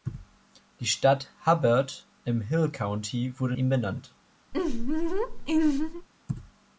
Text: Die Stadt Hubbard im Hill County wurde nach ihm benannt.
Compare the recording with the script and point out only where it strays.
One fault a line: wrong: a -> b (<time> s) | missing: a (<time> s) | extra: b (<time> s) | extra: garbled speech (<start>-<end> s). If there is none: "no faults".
missing: nach (3.5 s)